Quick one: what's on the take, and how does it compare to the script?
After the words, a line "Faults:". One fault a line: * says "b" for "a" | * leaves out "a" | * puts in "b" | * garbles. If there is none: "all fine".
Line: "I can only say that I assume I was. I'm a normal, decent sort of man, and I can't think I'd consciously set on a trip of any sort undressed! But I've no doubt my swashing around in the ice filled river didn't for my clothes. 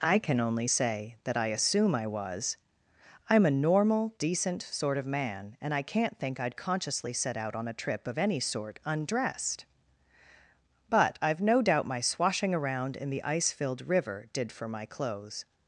"I can only say that I assume I was. I'm a normal, decent sort of man, and I can't think I'd consciously set out on a trip of any sort undressed! But I've no doubt my swashing around in the ice filled river did for my clothes.
Faults:
* puts in "out"
* says "did" for "didn't"